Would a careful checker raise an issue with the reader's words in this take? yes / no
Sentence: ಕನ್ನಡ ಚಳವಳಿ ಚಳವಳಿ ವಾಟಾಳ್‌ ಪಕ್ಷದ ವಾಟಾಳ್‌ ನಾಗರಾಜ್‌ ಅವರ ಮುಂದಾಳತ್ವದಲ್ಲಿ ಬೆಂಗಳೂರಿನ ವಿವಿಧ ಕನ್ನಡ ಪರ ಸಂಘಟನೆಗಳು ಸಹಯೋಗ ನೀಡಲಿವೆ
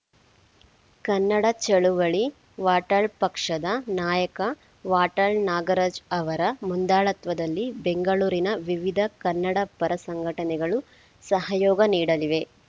yes